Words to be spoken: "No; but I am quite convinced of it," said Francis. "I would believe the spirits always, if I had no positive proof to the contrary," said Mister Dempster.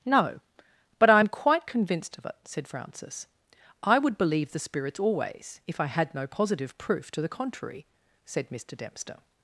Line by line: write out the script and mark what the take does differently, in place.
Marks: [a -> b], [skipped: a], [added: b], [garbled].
"No; but I am quite convinced of it," said Francis. "I would believe the spirits always, if I had no positive proof to the contrary," said Mister Dempster.